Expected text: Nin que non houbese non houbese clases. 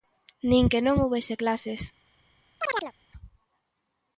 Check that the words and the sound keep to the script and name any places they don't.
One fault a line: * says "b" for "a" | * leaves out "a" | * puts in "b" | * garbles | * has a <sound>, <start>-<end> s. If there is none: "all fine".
* leaves out "non houbese"
* has a chirp, 2.6-2.9 s